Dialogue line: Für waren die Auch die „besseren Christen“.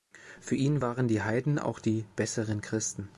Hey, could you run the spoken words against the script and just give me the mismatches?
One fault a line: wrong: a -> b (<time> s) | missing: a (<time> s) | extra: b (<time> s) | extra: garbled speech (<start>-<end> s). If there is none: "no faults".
extra: ihn (0.5 s)
extra: Heiden (1.2 s)